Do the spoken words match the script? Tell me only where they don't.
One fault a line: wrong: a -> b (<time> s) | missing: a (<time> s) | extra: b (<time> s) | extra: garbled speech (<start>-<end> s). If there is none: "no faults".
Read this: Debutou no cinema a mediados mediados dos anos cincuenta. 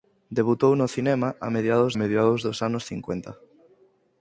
no faults